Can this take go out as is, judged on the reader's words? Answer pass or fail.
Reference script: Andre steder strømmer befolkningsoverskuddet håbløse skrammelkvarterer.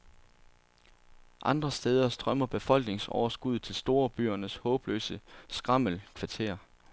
fail